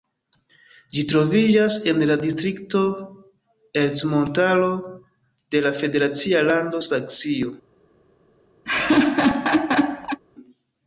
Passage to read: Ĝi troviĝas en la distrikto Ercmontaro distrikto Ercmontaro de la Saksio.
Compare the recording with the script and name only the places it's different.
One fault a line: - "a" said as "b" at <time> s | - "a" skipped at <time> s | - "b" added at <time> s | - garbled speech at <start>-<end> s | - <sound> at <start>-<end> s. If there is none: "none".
- "distrikto Ercmontaro de la" said as "de la federacia lando" at 5.6 s
- laugh at 8.6-10.2 s